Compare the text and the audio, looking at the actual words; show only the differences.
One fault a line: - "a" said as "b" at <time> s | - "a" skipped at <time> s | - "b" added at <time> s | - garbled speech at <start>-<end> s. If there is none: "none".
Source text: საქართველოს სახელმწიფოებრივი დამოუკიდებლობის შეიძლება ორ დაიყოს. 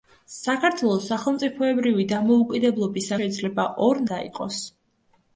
none